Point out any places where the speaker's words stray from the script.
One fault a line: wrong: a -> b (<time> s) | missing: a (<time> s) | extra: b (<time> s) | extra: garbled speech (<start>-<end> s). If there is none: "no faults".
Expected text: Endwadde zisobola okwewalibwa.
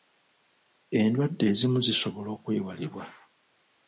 extra: ezimu (1.5 s)